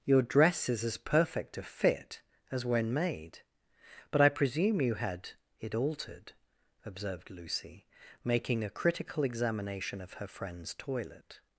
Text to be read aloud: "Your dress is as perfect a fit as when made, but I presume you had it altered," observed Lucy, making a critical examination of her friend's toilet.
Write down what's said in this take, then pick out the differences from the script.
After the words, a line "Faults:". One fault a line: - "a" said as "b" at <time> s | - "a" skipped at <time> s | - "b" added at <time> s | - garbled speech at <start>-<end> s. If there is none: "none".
"Your dress is as perfect a fit as when made, but I presume you had it altered," observed Lucy, making a critical examination of her friend's toilet.
Faults:
none